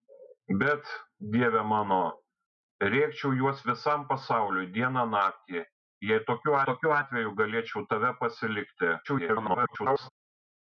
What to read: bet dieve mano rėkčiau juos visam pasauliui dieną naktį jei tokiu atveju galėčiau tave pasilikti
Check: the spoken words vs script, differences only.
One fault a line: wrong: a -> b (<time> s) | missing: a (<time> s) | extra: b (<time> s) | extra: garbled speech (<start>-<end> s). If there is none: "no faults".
extra: tokiu (6.7 s)
extra: garbled speech (9.0-10.1 s)